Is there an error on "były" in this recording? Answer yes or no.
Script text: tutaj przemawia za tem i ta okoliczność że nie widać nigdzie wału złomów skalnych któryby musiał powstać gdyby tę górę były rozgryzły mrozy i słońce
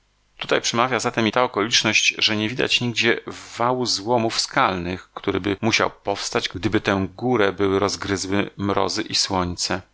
no